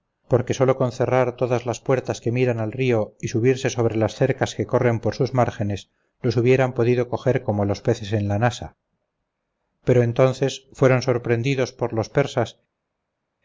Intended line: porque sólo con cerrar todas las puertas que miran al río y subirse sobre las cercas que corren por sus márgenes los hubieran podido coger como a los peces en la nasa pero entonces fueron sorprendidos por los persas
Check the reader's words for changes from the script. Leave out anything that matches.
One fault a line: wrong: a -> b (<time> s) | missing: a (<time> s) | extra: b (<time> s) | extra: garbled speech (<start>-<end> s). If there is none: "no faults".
no faults